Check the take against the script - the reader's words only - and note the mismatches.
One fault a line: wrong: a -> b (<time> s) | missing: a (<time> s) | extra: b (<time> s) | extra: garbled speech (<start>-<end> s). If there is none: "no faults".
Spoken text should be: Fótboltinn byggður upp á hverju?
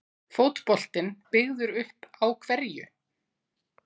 no faults